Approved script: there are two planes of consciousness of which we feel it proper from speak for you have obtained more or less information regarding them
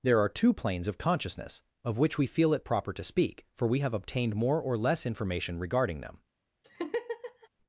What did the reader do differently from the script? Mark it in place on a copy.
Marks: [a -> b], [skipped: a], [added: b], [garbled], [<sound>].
there are two planes of consciousness of which we feel it proper [from -> to] speak for [you -> we] have obtained more or less information regarding them [laugh]